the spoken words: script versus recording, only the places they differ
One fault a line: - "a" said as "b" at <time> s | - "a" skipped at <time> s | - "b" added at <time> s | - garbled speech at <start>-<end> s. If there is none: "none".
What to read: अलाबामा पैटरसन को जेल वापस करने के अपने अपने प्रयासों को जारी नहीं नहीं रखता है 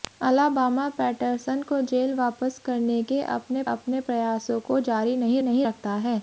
none